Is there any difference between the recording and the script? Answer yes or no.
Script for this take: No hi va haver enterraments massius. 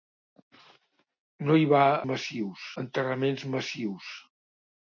yes